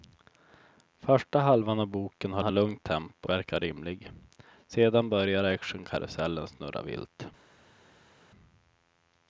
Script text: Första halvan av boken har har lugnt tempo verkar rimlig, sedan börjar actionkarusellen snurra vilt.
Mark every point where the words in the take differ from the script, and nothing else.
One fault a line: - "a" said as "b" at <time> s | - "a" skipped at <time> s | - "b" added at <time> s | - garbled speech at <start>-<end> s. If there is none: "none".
none